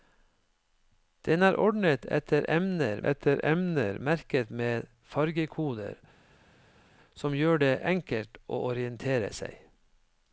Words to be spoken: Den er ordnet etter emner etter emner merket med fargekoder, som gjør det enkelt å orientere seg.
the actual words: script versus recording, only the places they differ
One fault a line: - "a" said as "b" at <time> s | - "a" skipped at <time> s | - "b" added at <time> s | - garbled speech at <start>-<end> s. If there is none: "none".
none